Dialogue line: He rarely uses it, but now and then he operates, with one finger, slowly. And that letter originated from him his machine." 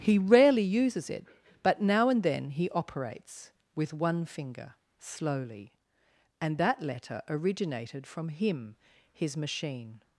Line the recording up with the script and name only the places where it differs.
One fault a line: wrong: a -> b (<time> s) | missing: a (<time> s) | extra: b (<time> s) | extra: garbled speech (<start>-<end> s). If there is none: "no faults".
no faults